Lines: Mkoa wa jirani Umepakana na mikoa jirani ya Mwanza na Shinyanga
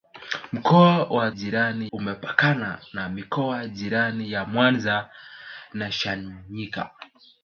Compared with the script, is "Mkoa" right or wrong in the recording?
right